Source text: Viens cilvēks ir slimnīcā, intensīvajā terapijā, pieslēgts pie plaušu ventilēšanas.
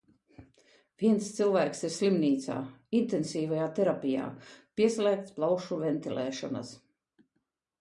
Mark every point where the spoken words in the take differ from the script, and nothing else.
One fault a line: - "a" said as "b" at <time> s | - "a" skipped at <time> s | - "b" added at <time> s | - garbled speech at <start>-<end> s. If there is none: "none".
- "pie" skipped at 5.4 s